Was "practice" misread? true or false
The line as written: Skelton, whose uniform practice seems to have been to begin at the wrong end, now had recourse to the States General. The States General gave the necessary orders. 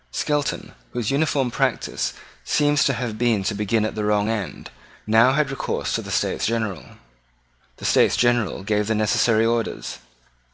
false